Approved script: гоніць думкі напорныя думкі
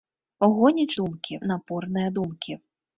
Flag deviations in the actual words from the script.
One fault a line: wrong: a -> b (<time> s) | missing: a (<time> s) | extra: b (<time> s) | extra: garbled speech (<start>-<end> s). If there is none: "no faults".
no faults